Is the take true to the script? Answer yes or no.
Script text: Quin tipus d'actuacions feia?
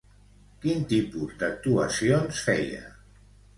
yes